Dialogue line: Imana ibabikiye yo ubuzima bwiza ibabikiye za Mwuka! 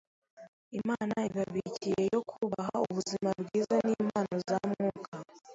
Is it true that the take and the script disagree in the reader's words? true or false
true